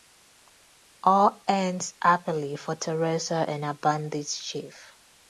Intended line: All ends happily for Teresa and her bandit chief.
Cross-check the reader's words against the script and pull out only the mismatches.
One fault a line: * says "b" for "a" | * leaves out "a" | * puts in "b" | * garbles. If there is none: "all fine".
all fine